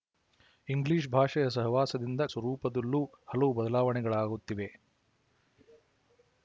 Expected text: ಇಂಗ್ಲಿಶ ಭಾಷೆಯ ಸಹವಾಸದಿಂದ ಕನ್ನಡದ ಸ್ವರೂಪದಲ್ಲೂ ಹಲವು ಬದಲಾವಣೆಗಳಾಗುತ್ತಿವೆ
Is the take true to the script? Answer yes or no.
no